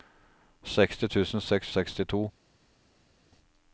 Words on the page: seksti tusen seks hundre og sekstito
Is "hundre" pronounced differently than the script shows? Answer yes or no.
yes